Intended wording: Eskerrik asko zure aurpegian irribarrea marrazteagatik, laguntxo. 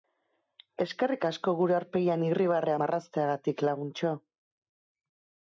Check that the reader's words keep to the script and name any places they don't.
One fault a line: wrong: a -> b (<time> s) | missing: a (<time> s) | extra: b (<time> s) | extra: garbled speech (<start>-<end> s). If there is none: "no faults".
wrong: zure -> gure (1.6 s)